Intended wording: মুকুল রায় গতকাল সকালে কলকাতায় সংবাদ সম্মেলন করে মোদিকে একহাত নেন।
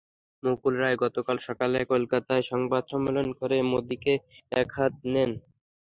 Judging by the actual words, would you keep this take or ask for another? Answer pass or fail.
pass